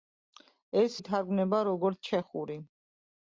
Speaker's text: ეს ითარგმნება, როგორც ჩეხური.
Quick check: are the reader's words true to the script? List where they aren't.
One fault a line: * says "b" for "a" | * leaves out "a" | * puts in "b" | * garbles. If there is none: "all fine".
all fine